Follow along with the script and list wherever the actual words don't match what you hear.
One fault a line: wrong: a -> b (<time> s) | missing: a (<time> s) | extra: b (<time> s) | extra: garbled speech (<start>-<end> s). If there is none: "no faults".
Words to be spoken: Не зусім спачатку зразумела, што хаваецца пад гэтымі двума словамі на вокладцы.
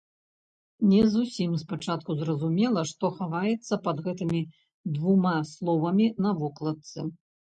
no faults